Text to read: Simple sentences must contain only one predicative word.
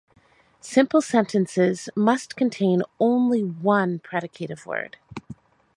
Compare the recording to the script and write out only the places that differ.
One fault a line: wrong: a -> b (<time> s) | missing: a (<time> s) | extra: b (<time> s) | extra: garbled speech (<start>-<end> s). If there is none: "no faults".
no faults